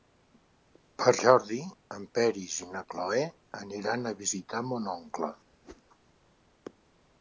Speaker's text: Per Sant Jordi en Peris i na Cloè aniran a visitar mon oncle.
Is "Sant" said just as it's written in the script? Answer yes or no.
no